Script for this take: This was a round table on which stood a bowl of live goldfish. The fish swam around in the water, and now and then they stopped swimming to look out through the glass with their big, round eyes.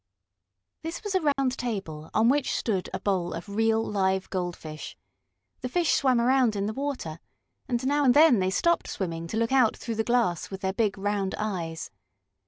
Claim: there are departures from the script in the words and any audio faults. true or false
true